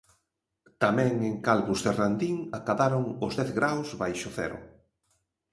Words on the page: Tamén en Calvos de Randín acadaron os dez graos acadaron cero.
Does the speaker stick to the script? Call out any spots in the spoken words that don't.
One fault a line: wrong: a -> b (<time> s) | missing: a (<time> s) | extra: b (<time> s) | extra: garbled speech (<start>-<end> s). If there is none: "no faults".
wrong: acadaron -> baixo (4.0 s)